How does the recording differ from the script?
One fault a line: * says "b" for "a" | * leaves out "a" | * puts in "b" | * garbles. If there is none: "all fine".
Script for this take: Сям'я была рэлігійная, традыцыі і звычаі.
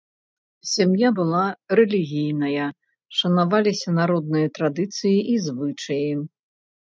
* puts in "шанаваліся народныя"